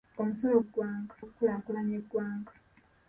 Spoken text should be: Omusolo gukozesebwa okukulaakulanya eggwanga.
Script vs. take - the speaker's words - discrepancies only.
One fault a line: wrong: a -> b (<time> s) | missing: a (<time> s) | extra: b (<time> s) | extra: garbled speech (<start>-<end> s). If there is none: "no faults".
wrong: gukozesebwa -> eggwanga (0.6 s)